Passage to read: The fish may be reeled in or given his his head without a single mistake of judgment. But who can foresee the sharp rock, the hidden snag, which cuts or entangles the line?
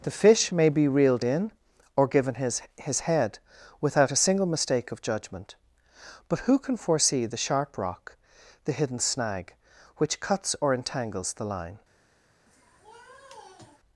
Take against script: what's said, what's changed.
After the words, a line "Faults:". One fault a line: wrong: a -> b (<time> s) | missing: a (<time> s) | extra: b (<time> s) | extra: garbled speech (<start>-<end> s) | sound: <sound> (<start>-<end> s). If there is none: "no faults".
The fish may be reeled in or given his his head without a single mistake of judgment. But who can foresee the sharp rock, the hidden snag, which cuts or entangles the line?
Faults:
sound: sniff (12.5-13.8 s)